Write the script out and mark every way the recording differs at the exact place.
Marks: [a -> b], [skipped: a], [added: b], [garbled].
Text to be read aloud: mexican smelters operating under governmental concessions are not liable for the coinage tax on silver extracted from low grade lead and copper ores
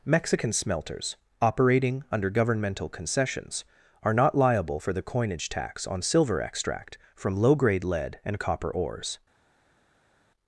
mexican smelters operating under governmental concessions are not liable for the coinage tax on silver [extracted -> extract] from low grade lead and copper ores